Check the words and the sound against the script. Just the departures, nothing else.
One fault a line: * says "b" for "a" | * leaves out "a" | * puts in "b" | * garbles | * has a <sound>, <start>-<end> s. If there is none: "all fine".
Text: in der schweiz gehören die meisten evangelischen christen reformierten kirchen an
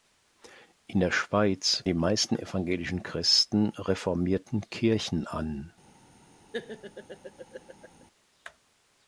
* leaves out "gehören"
* has a laugh, 6.5-8.0 s